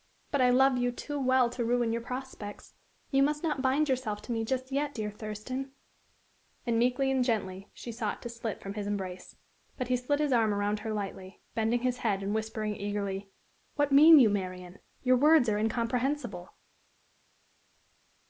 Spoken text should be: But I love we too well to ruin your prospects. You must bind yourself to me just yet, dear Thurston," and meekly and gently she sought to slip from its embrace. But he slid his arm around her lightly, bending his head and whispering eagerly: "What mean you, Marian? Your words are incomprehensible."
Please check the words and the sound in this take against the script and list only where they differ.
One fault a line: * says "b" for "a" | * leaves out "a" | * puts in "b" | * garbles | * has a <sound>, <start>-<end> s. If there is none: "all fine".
* says "you" for "we"
* puts in "not"
* says "his" for "its"